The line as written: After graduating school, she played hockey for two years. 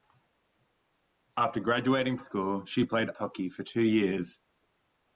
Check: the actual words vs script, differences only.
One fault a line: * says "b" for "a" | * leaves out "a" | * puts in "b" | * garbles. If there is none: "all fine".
all fine